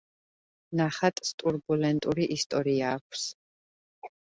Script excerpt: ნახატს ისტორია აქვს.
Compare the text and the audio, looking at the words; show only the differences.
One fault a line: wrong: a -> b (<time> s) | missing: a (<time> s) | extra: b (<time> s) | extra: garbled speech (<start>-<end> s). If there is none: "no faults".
extra: ტურბულენტური (1.4 s)